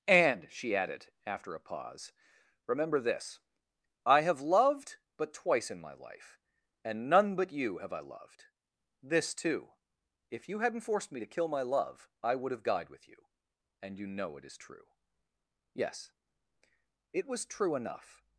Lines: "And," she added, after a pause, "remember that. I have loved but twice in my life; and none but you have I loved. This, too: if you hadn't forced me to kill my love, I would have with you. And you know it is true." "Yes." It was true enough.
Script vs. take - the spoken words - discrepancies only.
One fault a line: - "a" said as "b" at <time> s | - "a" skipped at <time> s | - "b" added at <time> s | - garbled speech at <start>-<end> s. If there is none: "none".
- "that" said as "this" at 3.0 s
- "died" added at 12.6 s